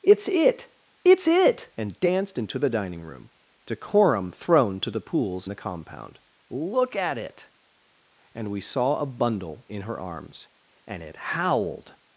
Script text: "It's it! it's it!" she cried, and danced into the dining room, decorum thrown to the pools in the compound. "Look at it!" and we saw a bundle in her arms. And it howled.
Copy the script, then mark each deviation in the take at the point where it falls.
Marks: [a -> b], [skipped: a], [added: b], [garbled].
"It's it! it's it!" [skipped: she cried,] and danced into the dining room, decorum thrown to the pools [skipped: in] the compound. "Look at it!" and we saw a bundle in her arms. And it howled.